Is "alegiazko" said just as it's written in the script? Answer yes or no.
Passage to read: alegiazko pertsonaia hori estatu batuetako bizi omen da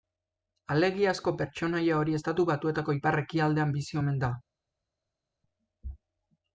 yes